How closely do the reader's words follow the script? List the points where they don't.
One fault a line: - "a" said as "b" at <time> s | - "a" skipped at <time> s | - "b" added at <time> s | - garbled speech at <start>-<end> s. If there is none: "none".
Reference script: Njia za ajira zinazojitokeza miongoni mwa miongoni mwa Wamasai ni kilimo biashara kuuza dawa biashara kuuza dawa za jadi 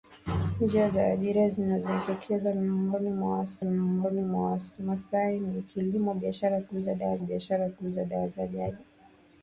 none